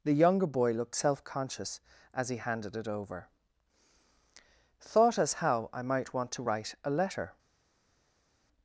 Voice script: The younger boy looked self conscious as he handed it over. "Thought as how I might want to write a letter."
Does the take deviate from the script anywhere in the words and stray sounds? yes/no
no